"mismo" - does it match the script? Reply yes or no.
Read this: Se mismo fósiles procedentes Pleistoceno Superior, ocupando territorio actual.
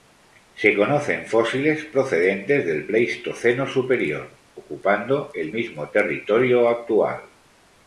no